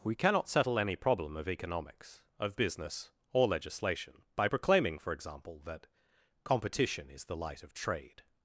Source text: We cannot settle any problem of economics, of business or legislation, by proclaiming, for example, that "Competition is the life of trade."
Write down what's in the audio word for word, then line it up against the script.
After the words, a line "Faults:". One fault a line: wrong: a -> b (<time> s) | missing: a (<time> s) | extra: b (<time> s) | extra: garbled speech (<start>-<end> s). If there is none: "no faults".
We cannot settle any problem of economics, of business or legislation, by proclaiming, for example, that "Competition is the light of trade."
Faults:
wrong: life -> light (7.4 s)